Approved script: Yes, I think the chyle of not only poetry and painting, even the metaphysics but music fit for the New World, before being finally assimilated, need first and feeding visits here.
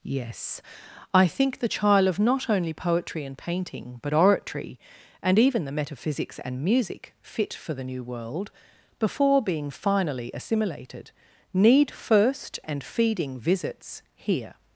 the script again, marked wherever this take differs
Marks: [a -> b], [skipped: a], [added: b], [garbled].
Yes, I think the chyle of not only poetry and painting, [added: but oratory and] even the metaphysics [but -> and] music fit for the New World, before being finally assimilated, need first and feeding visits here.